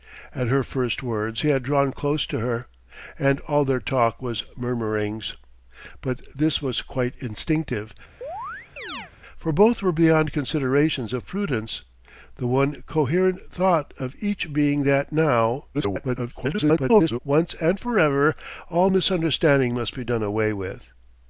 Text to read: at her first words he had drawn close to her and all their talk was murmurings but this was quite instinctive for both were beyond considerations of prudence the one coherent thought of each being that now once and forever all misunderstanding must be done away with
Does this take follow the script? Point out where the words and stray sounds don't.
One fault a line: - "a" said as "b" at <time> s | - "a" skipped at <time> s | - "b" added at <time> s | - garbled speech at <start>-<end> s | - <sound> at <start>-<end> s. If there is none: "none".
- chirp at 8.2-9.1 s
- garbled speech at 15.7-17.2 s